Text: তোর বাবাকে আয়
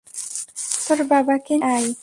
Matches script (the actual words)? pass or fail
pass